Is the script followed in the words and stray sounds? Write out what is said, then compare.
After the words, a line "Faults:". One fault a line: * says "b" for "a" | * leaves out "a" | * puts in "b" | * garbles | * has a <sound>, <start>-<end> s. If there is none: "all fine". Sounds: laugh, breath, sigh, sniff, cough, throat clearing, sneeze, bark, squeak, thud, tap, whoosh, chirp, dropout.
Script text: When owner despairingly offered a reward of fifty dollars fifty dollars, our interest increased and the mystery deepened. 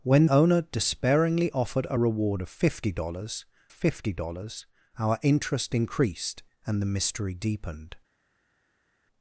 When owner despairingly offered a reward of fifty dollars fifty dollars, our interest increased and the mystery deepened.
Faults:
all fine